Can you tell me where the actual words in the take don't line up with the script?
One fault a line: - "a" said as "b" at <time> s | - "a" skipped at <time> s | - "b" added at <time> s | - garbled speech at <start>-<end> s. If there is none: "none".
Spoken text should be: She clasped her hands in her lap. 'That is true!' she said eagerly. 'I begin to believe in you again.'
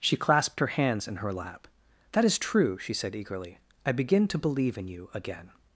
none